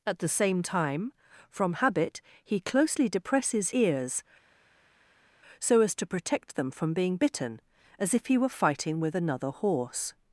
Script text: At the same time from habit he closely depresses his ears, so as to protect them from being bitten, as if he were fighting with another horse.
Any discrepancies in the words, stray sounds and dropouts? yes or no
yes